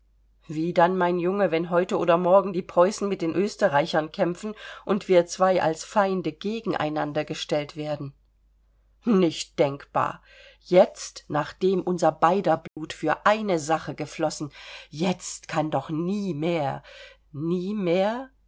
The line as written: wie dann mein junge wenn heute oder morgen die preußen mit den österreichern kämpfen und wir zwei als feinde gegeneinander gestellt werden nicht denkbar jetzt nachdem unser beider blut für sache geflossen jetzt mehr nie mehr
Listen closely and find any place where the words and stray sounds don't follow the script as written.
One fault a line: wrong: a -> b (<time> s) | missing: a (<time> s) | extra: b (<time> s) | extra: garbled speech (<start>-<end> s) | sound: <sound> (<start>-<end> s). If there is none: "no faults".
sound: dropout (12.7-12.8 s)
extra: eine (13.2 s)
extra: kann doch nie (15.5 s)